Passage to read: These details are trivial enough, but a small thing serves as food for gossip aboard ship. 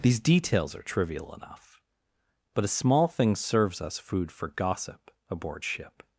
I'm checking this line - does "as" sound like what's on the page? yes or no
no